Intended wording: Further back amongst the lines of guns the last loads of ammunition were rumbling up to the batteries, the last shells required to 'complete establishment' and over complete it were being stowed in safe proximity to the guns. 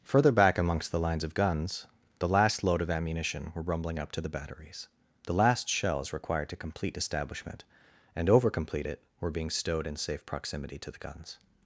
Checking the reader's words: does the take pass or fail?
fail